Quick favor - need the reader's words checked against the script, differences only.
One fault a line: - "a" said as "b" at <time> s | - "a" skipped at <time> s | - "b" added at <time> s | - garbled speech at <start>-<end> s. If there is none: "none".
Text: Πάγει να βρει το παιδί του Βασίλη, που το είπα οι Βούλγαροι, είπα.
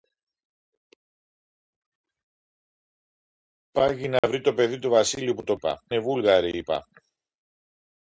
none